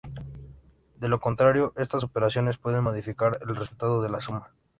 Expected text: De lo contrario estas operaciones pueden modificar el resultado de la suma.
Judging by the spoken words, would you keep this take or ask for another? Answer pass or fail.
pass